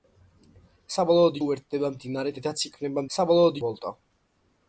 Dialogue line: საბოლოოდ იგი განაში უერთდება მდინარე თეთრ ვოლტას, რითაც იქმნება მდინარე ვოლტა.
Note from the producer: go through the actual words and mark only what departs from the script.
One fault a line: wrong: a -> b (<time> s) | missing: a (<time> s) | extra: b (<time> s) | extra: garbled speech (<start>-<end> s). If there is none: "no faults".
missing: იგი განაში (1.4 s)
missing: თეთრ ვოლტას (2.3 s)
wrong: მდინარე -> საბოლოოდ (3.1 s)